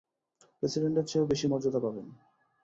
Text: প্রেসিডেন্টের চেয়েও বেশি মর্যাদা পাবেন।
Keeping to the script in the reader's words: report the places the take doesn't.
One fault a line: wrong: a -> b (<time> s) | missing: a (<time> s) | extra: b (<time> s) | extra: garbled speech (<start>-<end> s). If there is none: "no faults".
no faults